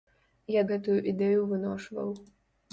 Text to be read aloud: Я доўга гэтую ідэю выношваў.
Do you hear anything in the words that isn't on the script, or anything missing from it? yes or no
yes